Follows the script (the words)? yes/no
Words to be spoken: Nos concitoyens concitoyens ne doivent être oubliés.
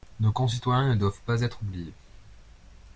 no